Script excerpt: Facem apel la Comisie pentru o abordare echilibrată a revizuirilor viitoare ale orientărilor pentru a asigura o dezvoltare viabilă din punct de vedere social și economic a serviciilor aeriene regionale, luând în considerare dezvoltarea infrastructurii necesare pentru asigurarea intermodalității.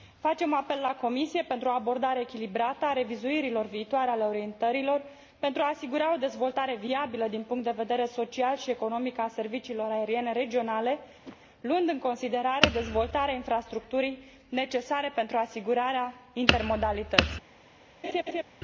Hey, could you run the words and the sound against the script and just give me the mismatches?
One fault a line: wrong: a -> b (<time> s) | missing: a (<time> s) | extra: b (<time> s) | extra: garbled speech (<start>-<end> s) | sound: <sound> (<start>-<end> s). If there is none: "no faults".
sound: whoosh (11.2-11.4 s)
sound: laugh (18.0-18.4 s)